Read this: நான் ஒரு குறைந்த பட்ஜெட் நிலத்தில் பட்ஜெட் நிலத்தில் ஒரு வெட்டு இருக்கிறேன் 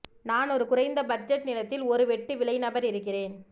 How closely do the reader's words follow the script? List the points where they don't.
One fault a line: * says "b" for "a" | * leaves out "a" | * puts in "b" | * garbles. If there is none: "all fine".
* says "ஒரு வெட்டு விலை நபர்" for "பட்ஜெட் நிலத்தில் ஒரு வெட்டு"